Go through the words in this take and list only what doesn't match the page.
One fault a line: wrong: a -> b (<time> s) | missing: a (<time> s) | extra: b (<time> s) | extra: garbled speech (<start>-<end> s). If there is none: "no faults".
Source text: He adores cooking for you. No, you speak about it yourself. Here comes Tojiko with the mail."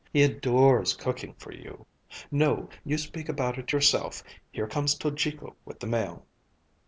no faults